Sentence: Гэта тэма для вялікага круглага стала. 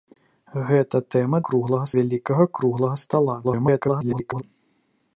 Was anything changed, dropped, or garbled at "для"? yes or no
yes